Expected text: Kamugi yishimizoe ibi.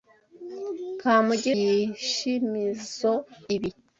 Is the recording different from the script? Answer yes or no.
no